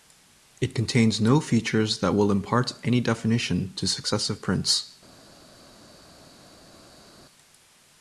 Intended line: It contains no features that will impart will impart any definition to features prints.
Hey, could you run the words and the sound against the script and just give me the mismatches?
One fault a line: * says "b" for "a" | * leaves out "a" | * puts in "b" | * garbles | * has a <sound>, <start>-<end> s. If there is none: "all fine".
* leaves out "will impart"
* says "successive" for "features"